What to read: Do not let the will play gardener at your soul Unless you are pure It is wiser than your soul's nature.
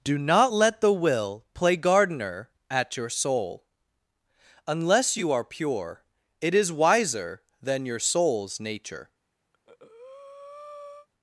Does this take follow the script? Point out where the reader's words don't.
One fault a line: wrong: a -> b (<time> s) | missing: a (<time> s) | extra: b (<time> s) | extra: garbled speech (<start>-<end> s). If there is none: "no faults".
no faults